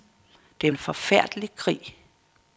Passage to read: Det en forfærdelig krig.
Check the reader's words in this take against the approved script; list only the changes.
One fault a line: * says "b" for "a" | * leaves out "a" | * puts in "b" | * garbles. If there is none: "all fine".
all fine